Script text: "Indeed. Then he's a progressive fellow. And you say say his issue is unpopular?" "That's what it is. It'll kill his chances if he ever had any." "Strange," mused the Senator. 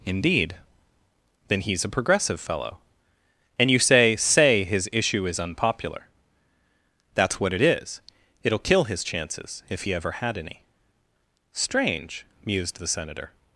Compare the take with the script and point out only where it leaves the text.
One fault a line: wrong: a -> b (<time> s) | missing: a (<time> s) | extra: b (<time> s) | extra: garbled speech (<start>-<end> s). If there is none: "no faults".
no faults